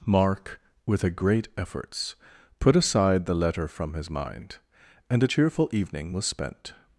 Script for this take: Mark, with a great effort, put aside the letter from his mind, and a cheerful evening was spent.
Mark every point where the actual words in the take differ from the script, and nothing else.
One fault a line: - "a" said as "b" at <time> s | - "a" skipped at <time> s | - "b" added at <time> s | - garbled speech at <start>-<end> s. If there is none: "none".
- "effort" said as "efforts" at 1.6 s